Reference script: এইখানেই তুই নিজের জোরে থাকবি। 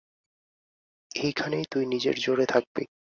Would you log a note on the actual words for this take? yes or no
no